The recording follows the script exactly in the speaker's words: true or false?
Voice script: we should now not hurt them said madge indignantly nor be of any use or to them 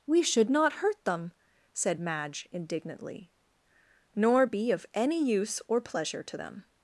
false